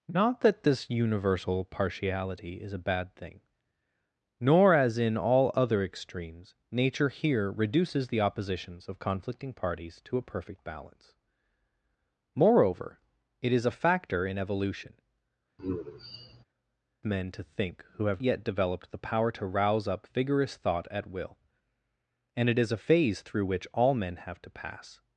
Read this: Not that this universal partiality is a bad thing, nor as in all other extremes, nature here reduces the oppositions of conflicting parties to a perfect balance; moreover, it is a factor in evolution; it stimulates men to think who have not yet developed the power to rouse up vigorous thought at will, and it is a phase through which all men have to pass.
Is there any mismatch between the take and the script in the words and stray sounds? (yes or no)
yes